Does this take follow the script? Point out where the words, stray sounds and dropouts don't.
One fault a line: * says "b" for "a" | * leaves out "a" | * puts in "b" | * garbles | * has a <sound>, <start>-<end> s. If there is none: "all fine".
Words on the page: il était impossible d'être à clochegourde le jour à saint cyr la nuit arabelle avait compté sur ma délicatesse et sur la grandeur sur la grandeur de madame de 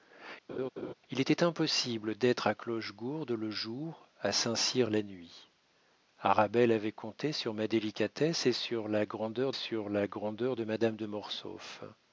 * has a laugh, 0.5-0.9 s